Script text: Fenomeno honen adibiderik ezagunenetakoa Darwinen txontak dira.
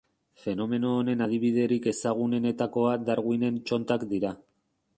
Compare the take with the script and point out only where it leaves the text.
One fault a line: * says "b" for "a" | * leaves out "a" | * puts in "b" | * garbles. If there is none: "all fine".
all fine